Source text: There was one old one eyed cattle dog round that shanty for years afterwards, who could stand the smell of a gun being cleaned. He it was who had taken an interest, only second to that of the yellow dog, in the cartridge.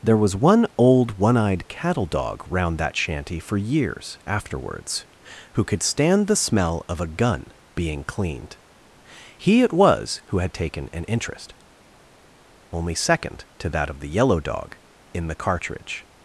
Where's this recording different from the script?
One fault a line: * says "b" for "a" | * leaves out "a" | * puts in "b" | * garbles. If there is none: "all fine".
all fine